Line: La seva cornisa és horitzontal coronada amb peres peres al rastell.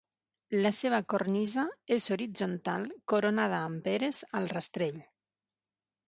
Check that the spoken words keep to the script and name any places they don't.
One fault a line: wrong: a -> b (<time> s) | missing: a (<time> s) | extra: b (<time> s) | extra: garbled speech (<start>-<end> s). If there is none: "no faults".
missing: peres (4.2 s)